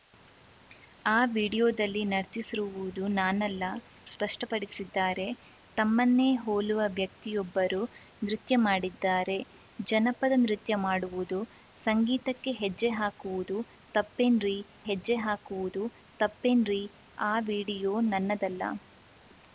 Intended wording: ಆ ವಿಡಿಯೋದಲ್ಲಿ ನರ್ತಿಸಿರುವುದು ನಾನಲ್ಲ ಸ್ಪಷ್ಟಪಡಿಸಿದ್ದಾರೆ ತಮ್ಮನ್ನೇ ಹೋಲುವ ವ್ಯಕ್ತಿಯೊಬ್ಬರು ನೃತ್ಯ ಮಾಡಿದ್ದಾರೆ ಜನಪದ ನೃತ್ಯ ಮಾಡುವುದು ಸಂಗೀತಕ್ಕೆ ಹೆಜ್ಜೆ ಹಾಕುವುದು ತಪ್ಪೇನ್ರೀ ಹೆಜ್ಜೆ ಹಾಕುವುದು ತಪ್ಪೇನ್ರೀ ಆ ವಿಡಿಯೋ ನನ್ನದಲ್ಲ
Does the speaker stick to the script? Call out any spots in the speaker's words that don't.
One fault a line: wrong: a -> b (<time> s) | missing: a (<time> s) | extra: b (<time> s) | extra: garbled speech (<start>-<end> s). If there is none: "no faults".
no faults